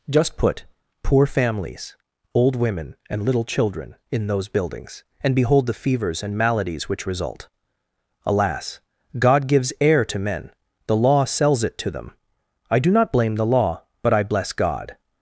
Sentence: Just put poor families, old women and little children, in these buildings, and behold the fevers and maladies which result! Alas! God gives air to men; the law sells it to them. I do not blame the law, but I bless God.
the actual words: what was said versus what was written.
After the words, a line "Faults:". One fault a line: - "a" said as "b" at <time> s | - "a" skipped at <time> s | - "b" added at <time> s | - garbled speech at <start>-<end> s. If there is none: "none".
Just put poor families, old women and little children, in those buildings, and behold the fevers and maladies which result! Alas! God gives air to men; the law sells it to them. I do not blame the law, but I bless God.
Faults:
- "these" said as "those" at 4.3 s